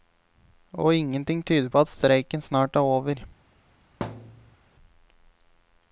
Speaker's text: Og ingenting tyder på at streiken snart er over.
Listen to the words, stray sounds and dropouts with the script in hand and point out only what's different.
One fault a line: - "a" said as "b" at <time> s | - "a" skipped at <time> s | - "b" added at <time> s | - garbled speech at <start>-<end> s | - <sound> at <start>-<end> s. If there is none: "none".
- thud at 4.0-4.6 s